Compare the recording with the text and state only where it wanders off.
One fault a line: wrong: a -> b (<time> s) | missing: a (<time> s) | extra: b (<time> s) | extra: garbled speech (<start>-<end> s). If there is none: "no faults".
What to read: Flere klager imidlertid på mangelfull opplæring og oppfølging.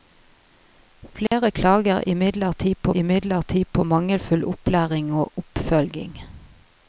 extra: imidlertid på (3.0 s)